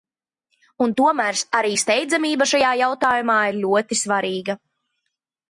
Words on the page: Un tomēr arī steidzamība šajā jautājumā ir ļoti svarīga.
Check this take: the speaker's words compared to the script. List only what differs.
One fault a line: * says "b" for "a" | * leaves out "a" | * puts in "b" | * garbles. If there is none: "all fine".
all fine